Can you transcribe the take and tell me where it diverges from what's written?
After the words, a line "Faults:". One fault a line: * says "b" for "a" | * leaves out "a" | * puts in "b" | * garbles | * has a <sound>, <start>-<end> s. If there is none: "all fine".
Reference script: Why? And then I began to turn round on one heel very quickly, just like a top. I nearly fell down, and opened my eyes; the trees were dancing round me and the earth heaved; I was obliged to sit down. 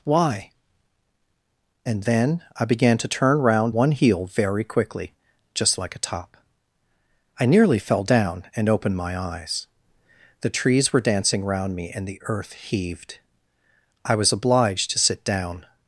Why? And then I began to turn round one heel very quickly, just like a top. I nearly fell down, and opened my eyes; the trees were dancing round me and the earth heaved; I was obliged to sit down.
Faults:
* leaves out "on"